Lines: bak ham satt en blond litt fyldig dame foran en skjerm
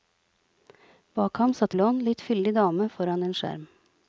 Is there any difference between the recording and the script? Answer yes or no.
yes